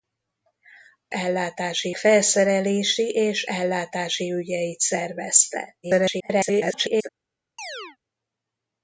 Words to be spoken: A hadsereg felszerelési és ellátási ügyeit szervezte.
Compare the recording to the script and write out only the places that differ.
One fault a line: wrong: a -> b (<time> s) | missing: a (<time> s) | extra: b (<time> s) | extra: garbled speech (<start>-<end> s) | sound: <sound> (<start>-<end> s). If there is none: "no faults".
wrong: hadsereg -> ellátási (1.1 s)
extra: garbled speech (5.8-7.1 s)
sound: chirp (7.6-8.0 s)